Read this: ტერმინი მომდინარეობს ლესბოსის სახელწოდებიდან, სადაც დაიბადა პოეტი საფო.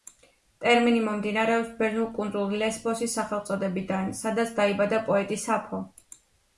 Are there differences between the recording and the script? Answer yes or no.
yes